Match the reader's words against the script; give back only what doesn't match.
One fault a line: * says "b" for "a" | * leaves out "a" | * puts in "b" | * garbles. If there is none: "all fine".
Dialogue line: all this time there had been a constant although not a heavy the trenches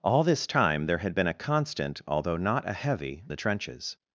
all fine